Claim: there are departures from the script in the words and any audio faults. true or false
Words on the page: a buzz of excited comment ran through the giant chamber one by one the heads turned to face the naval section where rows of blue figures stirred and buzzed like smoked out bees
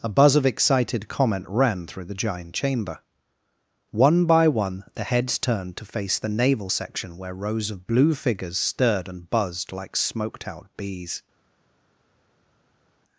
false